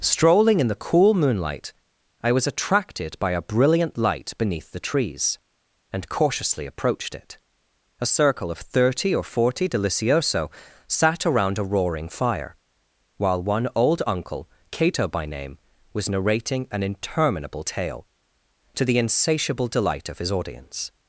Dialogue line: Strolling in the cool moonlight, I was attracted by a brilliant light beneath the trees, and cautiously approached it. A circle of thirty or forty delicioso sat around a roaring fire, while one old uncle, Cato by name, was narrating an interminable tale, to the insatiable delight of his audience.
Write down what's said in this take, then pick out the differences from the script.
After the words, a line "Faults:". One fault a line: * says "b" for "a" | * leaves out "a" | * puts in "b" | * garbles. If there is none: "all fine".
Strolling in the cool moonlight, I was attracted by a brilliant light beneath the trees, and cautiously approached it. A circle of thirty or forty delicioso sat around a roaring fire, while one old uncle, Cato by name, was narrating an interminable tale, to the insatiable delight of his audience.
Faults:
all fine